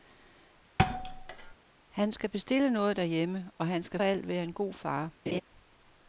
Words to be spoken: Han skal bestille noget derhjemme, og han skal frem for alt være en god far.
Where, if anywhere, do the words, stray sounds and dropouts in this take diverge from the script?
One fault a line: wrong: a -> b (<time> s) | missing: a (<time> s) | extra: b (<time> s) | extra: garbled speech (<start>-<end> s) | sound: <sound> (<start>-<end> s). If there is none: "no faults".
sound: thud (0.8-1.5 s)
missing: frem for (4.0 s)
sound: laugh (5.3-5.4 s)